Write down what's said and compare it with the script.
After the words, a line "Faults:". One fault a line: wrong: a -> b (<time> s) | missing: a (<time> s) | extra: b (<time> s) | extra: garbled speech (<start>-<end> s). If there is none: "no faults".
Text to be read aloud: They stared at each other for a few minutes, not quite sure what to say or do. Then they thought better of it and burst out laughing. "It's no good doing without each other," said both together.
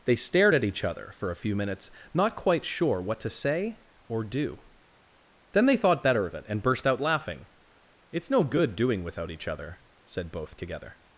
They stared at each other for a few minutes, not quite sure what to say or do. Then they thought better of it and burst out laughing. "It's no good doing without each other," said both together.
Faults:
no faults